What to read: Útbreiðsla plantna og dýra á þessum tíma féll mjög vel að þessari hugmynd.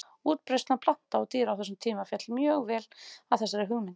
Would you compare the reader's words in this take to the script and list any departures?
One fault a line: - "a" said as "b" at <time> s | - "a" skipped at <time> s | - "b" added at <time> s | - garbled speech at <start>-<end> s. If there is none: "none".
none